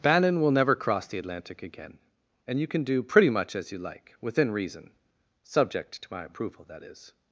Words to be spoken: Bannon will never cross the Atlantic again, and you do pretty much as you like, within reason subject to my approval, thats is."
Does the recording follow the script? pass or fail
fail